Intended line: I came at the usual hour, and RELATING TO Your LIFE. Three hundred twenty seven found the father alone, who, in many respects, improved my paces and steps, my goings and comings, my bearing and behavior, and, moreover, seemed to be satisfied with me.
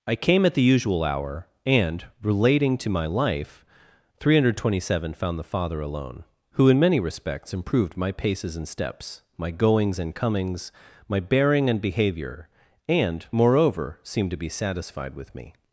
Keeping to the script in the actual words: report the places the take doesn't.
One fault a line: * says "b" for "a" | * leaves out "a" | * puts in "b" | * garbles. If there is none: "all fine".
* says "MY" for "Your"